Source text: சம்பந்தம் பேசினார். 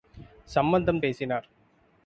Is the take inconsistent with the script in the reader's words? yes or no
no